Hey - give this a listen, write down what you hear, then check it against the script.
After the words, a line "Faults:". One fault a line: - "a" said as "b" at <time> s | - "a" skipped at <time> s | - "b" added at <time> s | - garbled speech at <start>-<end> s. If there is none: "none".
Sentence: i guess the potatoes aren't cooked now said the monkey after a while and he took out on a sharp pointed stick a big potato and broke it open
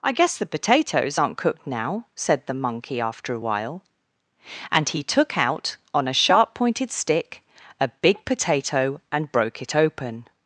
i guess the potatoes aren't cooked now said the monkey after a while and he took out on a sharp pointed stick a big potato and broke it open
Faults:
none